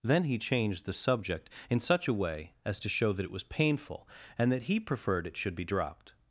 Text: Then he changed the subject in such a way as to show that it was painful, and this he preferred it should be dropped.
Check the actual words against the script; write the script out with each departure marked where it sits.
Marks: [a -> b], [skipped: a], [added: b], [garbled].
Then he changed the subject in such a way as to show that it was painful, and [this -> that] he preferred it should be dropped.